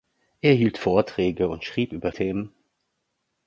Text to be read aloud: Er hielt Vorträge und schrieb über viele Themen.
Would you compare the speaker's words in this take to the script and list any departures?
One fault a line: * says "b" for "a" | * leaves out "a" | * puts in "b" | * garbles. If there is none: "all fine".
* leaves out "viele"